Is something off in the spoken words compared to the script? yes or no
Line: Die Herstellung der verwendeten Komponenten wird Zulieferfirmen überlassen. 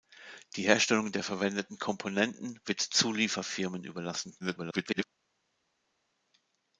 yes